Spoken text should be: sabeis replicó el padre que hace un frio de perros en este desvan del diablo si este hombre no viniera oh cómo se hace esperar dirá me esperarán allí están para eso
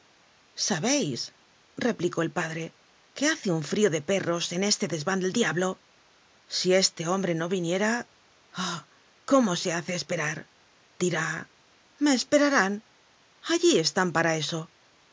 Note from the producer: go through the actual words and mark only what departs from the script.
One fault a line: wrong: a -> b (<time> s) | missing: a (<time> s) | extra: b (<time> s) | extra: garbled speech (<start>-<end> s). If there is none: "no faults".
no faults